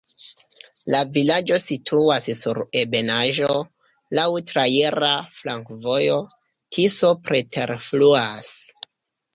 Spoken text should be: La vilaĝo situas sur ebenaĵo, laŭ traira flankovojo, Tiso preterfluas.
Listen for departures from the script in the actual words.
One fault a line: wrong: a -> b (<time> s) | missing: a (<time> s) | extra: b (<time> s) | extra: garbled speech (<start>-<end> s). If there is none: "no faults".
no faults